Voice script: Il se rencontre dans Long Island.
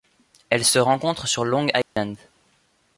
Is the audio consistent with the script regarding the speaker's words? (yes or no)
no